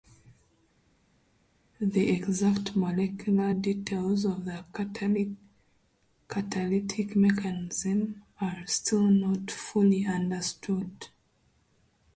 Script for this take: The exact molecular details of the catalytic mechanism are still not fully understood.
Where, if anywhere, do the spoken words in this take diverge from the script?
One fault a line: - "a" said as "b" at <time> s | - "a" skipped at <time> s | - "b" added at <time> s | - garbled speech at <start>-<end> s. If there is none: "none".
none